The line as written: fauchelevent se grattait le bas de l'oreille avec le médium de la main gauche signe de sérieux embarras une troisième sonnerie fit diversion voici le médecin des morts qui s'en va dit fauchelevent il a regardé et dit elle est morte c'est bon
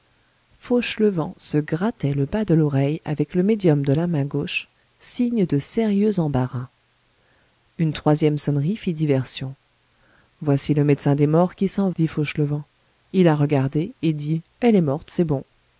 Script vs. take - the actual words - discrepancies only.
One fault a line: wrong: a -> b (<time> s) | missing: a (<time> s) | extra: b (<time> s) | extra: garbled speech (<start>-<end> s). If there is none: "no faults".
missing: va (11.9 s)